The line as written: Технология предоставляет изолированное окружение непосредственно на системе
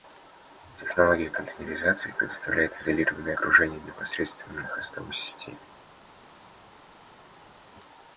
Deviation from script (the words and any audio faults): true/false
true